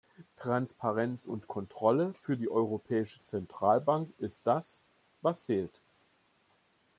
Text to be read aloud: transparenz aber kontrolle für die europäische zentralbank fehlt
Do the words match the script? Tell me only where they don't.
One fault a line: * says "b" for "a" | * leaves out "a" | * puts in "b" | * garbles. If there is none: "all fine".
* says "und" for "aber"
* puts in "ist das was"